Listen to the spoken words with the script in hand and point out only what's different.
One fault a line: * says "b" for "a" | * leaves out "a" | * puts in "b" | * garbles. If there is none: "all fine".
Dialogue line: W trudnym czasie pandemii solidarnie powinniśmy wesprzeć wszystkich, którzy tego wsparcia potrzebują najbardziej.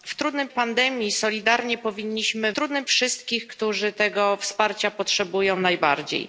* leaves out "czasie"
* says "trudnym" for "wesprzeć"